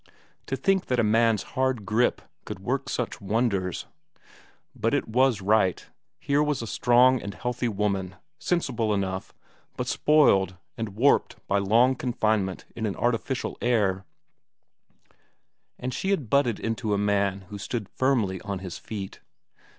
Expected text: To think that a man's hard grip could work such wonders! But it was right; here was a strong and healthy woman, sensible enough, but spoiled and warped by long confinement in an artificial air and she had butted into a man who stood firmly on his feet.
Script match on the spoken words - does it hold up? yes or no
yes